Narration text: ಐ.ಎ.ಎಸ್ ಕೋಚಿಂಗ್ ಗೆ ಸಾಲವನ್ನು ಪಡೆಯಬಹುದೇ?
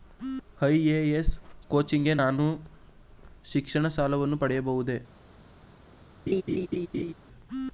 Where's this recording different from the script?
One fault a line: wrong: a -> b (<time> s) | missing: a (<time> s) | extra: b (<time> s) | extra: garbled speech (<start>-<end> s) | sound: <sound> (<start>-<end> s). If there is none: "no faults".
extra: ನಾನು ಶಿಕ್ಷಣ (2.2 s)
sound: laugh (6.3-7.1 s)